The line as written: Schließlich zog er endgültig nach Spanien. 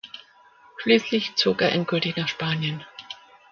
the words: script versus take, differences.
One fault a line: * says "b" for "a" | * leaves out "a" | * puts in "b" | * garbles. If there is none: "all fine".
all fine